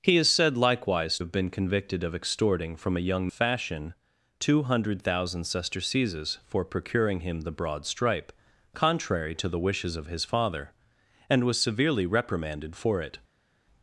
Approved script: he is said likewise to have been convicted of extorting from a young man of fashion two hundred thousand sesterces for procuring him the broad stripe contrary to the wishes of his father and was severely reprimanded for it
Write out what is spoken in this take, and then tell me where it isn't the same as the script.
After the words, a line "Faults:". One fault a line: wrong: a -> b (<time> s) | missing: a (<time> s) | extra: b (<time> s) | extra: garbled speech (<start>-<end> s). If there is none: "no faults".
he is said likewise have been convicted of extorting from a young fashion two hundred thousand sesterces for procuring him the broad stripe contrary to the wishes of his father and was severely reprimanded for it
Faults:
missing: to (1.2 s)
missing: man of (3.3 s)